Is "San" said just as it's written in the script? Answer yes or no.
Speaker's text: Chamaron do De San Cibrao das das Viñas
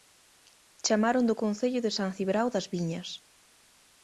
yes